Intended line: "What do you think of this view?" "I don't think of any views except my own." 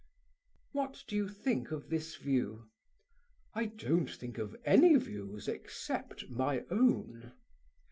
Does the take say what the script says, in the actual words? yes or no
yes